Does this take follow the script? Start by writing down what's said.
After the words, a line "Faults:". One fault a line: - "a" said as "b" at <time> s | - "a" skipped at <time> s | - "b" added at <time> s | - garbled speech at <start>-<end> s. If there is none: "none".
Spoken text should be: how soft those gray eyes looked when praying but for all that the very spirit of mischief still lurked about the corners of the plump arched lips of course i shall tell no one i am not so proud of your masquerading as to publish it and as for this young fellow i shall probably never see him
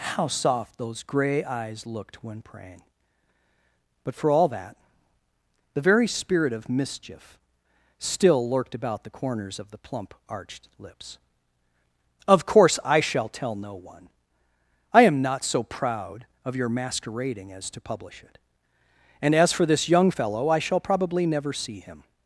how soft those gray eyes looked when praying but for all that the very spirit of mischief still lurked about the corners of the plump arched lips of course i shall tell no one i am not so proud of your masquerading as to publish it and as for this young fellow i shall probably never see him
Faults:
none